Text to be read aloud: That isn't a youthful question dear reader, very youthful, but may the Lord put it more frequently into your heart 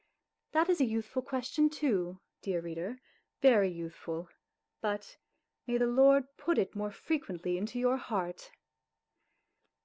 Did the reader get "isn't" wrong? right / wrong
wrong